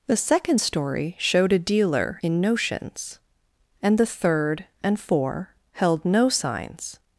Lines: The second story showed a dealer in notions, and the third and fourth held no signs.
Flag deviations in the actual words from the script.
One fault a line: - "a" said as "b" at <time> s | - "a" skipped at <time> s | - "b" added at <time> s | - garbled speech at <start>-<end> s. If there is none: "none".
- "fourth" said as "four" at 5.0 s